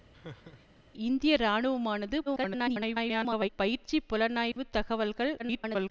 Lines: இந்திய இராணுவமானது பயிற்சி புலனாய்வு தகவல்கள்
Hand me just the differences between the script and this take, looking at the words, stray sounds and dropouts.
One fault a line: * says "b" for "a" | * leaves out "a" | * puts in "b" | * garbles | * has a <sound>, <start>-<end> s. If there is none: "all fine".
* has a laugh, 0.1-0.8 s
* garbles
* has a dropout, 4.5-4.6 s
* garbles